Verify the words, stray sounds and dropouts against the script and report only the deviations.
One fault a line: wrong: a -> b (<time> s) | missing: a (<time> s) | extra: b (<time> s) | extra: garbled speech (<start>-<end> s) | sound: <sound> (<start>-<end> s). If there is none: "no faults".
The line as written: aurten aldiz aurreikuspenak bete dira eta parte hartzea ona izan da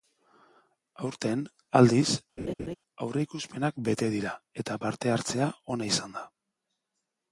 sound: laugh (2.4-2.8 s)